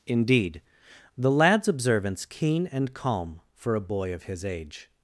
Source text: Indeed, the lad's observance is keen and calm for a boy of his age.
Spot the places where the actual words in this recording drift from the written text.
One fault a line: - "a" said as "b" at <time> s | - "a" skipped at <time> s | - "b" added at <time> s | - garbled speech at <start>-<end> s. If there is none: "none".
- "is" skipped at 2.2 s